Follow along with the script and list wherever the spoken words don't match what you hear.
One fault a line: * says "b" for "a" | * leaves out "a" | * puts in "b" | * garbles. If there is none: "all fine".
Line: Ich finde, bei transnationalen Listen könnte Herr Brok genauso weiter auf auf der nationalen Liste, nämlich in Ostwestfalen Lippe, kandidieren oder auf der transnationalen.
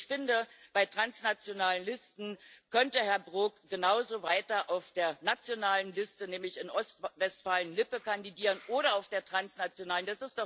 * leaves out "auf"